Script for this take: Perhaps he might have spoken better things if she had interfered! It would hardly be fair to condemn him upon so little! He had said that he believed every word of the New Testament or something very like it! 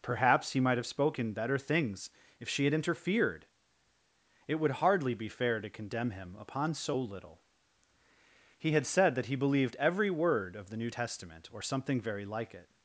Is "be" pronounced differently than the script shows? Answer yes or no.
no